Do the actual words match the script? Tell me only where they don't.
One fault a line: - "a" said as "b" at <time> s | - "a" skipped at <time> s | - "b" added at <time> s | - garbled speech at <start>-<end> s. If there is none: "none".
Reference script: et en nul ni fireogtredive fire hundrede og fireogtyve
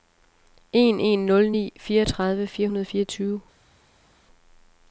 - "et" said as "en" at 0.7 s